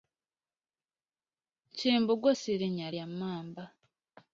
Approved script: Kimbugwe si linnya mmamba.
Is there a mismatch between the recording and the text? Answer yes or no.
yes